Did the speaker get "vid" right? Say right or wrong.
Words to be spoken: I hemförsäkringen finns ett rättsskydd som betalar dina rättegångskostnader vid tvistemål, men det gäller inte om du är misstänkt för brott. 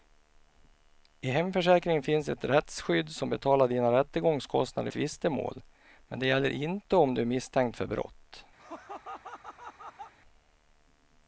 wrong